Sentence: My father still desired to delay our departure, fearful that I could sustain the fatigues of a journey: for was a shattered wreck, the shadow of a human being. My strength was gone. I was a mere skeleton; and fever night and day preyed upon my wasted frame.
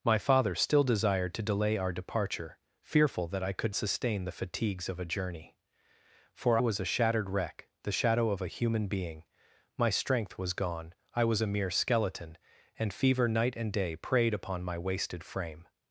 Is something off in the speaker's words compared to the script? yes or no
no